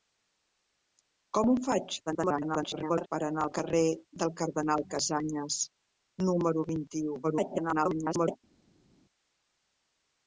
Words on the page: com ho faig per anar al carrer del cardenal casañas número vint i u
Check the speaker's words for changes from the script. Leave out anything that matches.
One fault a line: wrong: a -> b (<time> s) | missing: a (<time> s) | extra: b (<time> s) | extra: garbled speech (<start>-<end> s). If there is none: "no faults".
extra: garbled speech (2.1-3.1 s)
extra: garbled speech (7.2-8.4 s)